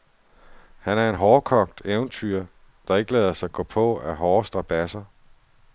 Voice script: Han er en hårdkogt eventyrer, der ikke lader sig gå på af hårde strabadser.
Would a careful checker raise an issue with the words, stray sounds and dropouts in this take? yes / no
no